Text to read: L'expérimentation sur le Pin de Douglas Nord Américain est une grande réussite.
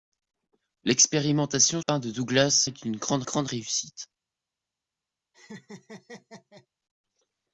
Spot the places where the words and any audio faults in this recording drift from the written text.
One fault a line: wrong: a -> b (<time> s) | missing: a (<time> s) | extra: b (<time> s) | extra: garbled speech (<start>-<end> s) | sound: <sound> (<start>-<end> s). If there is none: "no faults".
missing: sur le (1.8 s)
missing: Nord Américain (2.7 s)
extra: grande (3.2 s)
sound: laugh (5.3-6.7 s)